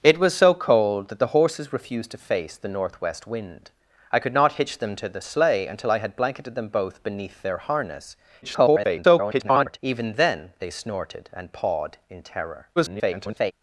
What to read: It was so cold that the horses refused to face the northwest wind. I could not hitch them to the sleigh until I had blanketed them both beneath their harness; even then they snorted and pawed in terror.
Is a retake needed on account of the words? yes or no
yes